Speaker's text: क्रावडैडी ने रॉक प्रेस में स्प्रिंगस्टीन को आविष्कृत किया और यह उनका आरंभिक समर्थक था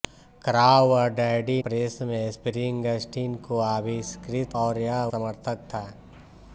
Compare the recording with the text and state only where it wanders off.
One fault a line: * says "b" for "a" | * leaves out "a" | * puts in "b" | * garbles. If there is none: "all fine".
* leaves out "ने रॉक"
* leaves out "किया"
* leaves out "उनका आरंभिक"